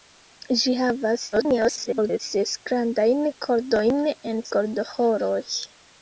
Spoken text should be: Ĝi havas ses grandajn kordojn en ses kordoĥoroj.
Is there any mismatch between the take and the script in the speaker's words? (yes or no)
yes